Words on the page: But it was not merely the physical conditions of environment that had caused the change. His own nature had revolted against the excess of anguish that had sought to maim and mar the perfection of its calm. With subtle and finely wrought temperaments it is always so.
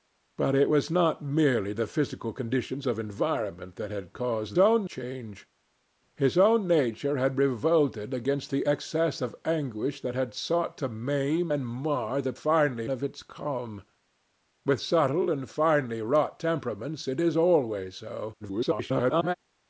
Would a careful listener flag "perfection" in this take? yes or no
yes